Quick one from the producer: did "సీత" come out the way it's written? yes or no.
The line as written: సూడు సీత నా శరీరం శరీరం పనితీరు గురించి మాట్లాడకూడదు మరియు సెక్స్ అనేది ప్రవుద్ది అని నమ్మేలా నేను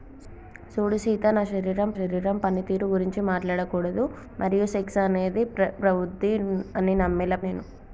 yes